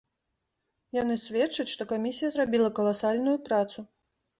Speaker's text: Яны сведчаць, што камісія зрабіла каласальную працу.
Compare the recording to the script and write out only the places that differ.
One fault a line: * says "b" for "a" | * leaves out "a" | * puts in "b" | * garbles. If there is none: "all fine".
all fine